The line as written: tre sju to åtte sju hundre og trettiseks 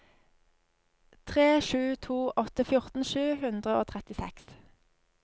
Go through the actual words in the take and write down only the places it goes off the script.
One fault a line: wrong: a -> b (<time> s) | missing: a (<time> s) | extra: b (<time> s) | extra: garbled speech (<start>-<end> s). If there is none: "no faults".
extra: fjorten (2.7 s)